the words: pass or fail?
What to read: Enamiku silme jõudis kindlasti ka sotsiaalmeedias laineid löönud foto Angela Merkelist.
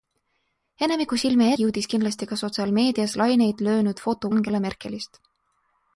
pass